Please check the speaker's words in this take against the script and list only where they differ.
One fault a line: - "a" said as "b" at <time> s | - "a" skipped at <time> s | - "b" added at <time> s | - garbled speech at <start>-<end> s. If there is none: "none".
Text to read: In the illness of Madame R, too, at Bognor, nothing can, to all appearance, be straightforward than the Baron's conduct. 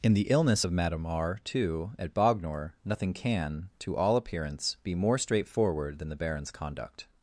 - "more" added at 4.9 s